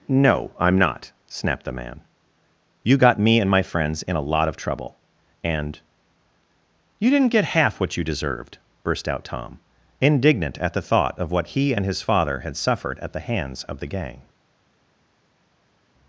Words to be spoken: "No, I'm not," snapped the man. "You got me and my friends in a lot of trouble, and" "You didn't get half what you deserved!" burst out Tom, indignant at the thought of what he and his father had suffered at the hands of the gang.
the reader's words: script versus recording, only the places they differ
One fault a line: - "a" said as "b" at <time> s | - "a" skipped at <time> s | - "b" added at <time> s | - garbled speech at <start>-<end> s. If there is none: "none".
none